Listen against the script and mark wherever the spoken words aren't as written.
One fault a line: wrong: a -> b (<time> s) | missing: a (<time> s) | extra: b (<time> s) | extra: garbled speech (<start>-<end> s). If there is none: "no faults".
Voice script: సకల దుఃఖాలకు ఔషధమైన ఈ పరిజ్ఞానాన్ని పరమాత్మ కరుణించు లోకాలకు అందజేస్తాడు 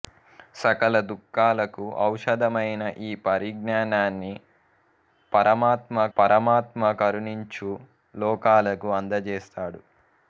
extra: పరమాత్మ (6.2 s)